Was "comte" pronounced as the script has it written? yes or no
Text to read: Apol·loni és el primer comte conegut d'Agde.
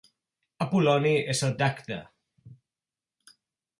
no